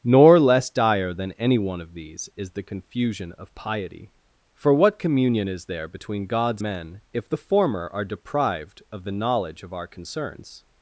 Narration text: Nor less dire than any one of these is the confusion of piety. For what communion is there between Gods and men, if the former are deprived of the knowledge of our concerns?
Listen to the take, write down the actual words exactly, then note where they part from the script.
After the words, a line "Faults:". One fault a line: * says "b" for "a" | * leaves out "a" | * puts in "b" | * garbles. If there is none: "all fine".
Nor less dire than any one of these is the confusion of piety. For what communion is there between Gods men, if the former are deprived of the knowledge of our concerns?
Faults:
* leaves out "and"